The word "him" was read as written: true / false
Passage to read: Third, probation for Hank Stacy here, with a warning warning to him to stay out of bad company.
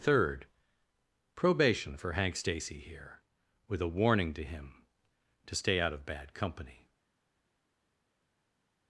true